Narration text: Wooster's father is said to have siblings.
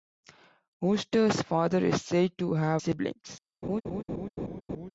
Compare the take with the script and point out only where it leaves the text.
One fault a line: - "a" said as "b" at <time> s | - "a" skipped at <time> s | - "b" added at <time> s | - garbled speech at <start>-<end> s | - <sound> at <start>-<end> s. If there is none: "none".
- laugh at 3.6-4.9 s